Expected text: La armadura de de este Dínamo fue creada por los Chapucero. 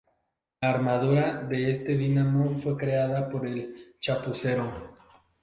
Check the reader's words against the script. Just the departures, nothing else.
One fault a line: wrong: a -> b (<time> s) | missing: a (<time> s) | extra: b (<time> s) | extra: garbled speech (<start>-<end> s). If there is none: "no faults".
missing: de (1.7 s)
wrong: los -> el (3.5 s)